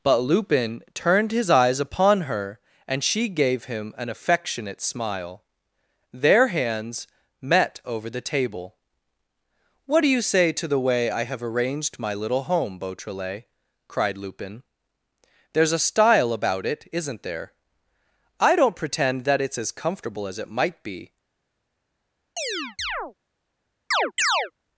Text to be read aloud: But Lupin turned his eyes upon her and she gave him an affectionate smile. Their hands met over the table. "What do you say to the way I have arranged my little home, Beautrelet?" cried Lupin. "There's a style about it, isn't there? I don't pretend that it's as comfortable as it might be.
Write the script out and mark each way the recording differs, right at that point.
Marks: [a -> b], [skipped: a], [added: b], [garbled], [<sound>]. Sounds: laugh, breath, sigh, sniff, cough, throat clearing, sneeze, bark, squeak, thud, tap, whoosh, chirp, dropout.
But Lupin turned his eyes upon her and she gave him an affectionate smile. Their hands met over the table. "What do you say to the way I have arranged my little home, Beautrelet?" cried Lupin. "There's a style about it, isn't there? I don't pretend that it's as comfortable as it might be. [chirp] [chirp]